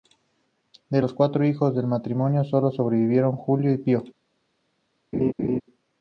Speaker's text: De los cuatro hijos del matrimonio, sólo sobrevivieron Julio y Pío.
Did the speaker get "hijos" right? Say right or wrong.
right